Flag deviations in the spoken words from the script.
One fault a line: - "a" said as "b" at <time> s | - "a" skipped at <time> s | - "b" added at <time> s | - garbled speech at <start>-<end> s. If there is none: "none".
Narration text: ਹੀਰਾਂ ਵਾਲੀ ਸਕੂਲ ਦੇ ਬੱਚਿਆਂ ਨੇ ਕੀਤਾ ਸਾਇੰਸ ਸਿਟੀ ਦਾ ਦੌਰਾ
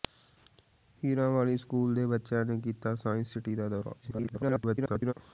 - garbled speech at 4.0-5.1 s